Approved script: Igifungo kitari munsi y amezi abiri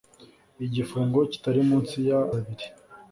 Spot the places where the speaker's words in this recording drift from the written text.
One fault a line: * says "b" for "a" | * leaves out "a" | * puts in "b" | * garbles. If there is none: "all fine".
* leaves out "amezi"